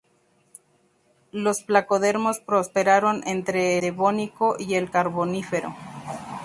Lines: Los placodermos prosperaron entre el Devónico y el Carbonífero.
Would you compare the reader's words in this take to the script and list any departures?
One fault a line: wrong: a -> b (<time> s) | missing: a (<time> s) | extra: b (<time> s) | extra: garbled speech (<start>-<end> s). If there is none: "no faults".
missing: el (3.8 s)